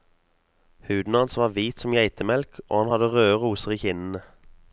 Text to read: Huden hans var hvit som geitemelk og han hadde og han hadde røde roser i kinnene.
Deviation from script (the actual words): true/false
true